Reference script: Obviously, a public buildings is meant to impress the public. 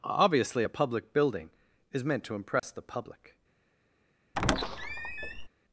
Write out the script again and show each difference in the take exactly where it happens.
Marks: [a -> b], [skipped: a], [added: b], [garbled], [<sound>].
Obviously, a public [buildings -> building] is meant to impress [dropout] the public. [squeak]